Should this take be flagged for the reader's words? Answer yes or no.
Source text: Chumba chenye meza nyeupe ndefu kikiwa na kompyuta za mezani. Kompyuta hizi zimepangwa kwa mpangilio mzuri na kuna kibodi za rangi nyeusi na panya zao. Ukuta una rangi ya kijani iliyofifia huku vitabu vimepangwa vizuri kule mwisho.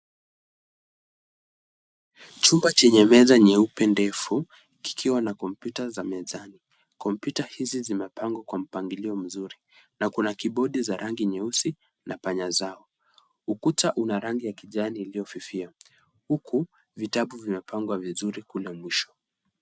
no